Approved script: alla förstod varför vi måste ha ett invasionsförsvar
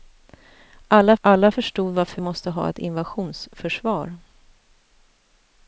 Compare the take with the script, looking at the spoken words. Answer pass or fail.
fail